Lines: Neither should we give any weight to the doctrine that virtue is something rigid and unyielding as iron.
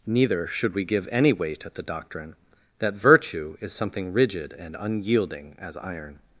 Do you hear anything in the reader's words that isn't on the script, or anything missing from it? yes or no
yes